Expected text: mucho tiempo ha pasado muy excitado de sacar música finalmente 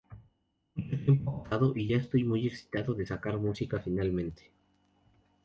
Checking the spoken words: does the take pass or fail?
fail